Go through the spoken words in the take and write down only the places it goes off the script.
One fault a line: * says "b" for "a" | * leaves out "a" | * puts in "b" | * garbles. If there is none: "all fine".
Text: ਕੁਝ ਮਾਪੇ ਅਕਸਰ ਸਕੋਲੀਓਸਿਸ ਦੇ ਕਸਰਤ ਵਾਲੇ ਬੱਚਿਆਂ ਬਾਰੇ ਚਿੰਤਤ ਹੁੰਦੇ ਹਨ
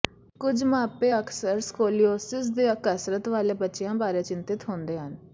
all fine